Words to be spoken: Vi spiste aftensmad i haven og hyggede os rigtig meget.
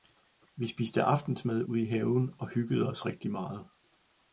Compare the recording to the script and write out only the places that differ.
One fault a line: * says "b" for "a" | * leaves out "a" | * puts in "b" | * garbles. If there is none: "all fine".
* puts in "ude"